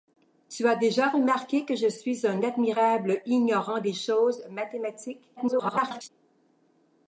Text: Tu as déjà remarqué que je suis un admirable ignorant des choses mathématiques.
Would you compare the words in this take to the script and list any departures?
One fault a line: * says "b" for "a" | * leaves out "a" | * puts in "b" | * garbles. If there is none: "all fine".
* garbles